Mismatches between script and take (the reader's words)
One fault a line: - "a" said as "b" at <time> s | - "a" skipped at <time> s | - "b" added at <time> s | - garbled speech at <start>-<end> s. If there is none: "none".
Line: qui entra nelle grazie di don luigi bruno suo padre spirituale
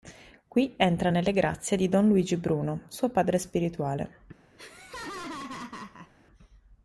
none